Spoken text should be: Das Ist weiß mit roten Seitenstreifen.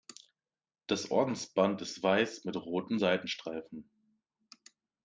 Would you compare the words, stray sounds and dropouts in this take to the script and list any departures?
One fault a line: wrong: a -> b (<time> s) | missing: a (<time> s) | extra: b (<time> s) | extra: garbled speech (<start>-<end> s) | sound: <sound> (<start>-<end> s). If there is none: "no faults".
extra: Ordensband (1.1 s)